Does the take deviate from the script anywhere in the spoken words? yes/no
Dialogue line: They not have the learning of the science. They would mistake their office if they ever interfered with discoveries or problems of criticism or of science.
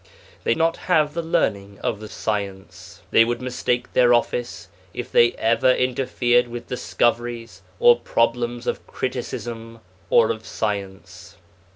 no